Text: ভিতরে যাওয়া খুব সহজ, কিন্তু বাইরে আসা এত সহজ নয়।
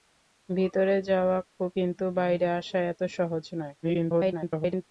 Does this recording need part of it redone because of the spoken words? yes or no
yes